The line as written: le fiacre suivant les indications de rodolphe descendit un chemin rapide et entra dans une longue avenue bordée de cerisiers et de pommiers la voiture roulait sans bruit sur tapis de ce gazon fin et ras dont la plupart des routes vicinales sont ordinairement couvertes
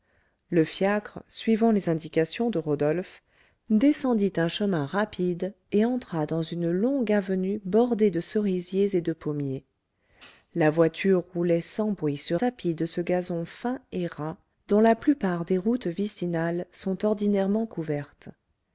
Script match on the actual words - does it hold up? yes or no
yes